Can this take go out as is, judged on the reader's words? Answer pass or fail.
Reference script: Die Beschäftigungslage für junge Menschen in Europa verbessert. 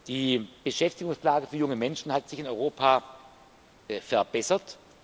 fail